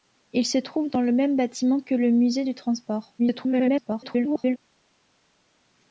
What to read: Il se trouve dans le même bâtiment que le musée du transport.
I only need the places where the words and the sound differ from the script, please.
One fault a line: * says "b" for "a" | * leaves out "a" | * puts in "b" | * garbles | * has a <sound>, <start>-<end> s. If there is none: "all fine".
* garbles